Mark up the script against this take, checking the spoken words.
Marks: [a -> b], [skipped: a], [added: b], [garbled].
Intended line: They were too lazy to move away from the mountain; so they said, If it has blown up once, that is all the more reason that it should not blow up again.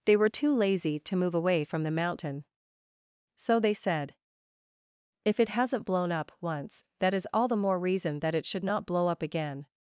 They were too lazy to move away from the mountain; so they said, If it [has -> hasn't] blown up once, that is all the more reason that it should not blow up again.